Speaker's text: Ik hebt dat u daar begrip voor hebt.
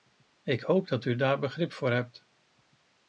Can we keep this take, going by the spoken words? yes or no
no